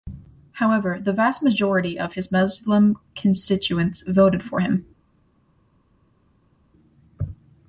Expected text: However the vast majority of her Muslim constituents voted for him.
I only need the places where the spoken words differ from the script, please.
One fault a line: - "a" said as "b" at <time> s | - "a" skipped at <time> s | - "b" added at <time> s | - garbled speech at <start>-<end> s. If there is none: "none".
- "her" said as "his" at 2.1 s